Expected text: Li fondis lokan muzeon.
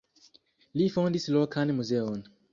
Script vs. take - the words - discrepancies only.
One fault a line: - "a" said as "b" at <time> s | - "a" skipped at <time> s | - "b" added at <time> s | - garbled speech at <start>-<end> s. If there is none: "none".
none